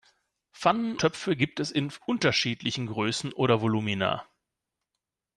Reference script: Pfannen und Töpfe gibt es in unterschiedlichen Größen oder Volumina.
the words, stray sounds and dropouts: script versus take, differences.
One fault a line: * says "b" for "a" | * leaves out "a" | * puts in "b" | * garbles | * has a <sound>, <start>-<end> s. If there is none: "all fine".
* leaves out "und"